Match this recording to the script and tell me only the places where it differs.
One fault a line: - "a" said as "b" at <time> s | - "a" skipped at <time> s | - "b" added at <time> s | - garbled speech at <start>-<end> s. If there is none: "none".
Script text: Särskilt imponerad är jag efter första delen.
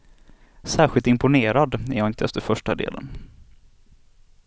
- "inte" added at 2.1 s